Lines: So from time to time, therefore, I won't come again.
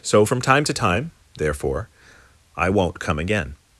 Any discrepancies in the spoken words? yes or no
no